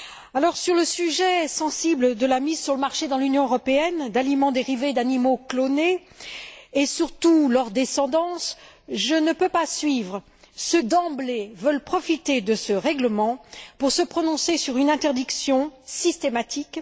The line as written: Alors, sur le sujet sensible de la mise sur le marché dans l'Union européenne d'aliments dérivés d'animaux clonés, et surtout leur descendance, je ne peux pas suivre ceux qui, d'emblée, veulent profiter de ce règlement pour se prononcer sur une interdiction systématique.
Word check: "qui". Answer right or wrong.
wrong